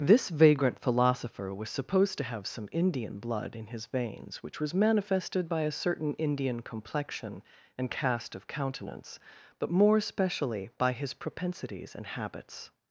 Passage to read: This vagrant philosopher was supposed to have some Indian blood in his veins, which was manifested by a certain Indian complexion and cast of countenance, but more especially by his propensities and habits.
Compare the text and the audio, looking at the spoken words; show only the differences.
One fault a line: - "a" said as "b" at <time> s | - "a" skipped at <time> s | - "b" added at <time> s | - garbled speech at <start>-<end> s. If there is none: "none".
none